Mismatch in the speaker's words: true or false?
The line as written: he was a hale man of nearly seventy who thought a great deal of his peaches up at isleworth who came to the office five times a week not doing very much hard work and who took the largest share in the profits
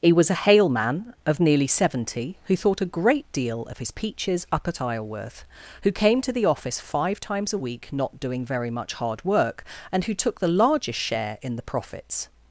false